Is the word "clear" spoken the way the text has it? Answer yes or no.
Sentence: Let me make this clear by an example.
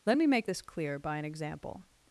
yes